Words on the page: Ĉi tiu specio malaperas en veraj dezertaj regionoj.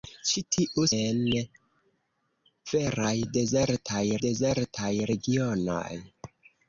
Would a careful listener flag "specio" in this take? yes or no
yes